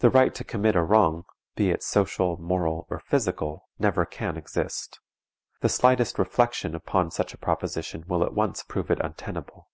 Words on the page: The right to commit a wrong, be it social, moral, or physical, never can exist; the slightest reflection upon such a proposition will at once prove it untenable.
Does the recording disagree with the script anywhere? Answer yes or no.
no